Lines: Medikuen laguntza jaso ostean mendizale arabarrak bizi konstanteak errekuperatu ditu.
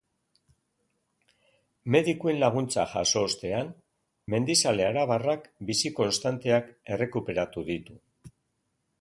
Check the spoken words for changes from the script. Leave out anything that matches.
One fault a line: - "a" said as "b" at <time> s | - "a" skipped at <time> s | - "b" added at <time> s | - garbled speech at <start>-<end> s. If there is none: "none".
none